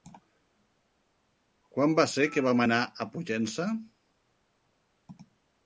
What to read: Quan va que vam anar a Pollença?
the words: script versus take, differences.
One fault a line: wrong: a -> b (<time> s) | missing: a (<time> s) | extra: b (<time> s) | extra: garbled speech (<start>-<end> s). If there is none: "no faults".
extra: ser (2.1 s)